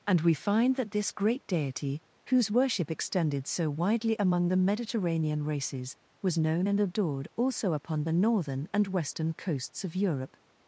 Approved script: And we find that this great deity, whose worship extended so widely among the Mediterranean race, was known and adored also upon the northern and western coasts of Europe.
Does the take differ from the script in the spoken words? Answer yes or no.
yes